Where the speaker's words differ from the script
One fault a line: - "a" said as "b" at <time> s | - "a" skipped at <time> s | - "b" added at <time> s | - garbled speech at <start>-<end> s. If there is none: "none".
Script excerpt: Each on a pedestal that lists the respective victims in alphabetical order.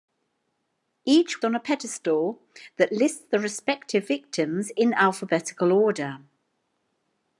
none